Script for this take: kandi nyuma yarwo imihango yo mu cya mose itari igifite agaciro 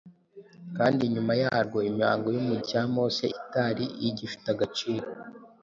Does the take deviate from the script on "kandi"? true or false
false